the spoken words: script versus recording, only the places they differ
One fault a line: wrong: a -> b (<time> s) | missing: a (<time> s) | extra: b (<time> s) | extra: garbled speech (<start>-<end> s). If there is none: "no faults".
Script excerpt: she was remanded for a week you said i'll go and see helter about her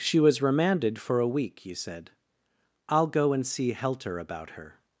no faults